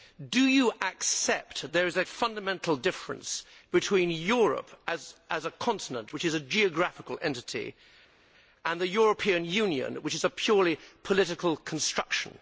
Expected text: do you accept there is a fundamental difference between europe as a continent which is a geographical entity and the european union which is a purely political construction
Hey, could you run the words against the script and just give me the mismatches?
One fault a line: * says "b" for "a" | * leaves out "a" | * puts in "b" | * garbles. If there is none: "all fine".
all fine